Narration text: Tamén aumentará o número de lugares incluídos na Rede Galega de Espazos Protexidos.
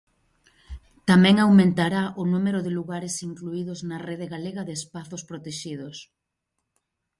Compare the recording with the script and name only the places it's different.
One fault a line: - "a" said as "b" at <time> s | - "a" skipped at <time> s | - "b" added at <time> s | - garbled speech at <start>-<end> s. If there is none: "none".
none